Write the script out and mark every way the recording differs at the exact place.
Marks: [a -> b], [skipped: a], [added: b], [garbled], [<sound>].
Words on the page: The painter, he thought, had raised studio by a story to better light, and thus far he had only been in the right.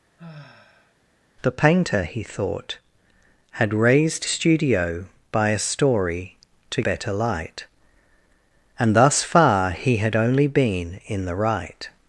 [sigh] The painter, he thought, had raised studio by a story to better light, and thus far he had only been in the right.